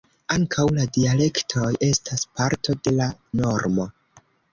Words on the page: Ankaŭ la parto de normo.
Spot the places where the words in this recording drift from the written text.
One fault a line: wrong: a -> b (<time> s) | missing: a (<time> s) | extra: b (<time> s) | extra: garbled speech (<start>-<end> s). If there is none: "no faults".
extra: dialektoj estas (0.9 s)
extra: la (3.0 s)